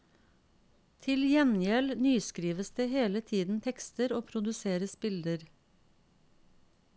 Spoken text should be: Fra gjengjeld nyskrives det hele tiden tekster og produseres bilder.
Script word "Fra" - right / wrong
wrong